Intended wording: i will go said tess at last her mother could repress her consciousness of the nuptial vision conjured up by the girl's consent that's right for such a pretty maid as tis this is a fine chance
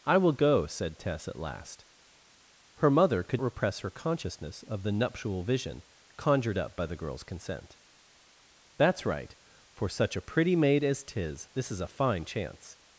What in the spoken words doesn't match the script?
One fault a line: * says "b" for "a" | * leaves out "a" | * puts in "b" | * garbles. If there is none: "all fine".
all fine